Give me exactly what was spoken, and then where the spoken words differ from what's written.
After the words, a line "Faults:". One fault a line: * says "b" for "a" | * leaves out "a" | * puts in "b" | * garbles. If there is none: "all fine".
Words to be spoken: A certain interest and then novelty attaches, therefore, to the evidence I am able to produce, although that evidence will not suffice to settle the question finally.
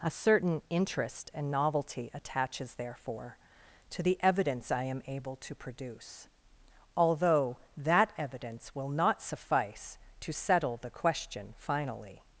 A certain interest and novelty attaches, therefore, to the evidence I am able to produce, although that evidence will not suffice to settle the question finally.
Faults:
* leaves out "then"